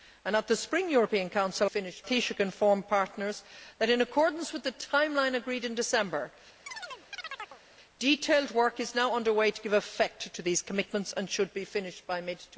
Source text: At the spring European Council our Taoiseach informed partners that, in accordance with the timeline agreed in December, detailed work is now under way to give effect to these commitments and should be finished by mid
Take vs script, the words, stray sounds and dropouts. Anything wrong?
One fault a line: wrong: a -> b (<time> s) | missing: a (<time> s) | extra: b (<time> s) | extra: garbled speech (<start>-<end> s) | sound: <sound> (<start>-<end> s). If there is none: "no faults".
wrong: our -> finished (1.6 s)
sound: chirp (6.7-7.6 s)